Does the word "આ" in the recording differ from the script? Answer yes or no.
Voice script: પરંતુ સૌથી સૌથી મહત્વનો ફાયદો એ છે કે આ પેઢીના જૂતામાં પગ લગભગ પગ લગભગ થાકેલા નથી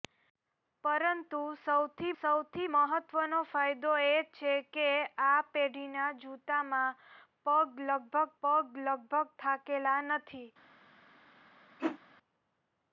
no